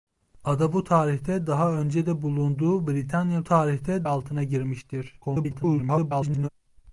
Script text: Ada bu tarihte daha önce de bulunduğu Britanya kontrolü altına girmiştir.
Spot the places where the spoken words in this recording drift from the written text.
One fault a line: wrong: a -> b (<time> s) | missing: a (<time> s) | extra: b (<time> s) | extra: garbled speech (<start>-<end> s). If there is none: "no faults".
wrong: kontrolü -> tarihte (3.4 s)
extra: garbled speech (5.2-6.5 s)